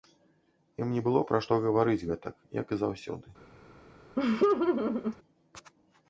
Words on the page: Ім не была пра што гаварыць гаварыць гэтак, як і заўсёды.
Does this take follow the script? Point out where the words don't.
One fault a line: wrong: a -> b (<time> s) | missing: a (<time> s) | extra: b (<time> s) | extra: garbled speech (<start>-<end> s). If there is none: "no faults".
wrong: была -> было (1.1 s)
missing: гаварыць (2.1 s)